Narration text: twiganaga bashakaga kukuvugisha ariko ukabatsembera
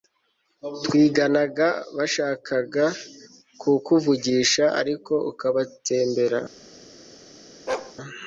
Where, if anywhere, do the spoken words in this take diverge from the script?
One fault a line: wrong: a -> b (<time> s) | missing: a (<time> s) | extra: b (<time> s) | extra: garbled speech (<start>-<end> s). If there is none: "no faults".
no faults